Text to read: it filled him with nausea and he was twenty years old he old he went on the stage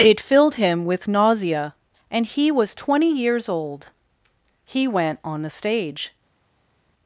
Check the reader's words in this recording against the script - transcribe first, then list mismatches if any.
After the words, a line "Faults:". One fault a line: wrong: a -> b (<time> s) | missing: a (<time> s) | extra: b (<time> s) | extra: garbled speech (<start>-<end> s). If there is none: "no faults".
it filled him with nausea and he was twenty years old he went on the stage
Faults:
missing: old he (4.9 s)